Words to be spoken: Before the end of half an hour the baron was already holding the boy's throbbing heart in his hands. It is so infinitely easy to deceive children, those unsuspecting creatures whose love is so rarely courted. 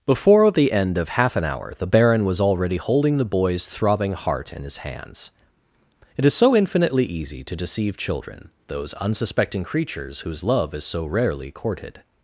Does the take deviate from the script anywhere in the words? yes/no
no